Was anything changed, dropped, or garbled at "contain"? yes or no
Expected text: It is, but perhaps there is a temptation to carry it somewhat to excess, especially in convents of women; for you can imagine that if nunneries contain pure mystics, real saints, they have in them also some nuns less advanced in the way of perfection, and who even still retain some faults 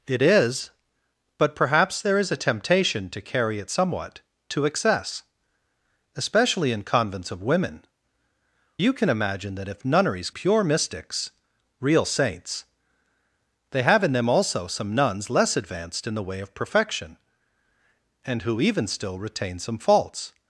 yes